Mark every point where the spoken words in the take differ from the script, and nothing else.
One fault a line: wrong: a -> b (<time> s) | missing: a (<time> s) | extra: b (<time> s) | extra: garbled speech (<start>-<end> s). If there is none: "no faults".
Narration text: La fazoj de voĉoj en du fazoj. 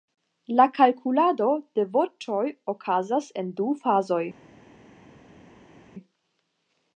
wrong: fazoj -> kalkulado (0.8 s)
extra: okazas (2.7 s)